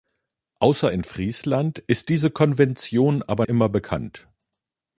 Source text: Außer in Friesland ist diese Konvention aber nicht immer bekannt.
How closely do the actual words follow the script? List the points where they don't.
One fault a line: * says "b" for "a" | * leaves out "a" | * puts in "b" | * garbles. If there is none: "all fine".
* leaves out "nicht"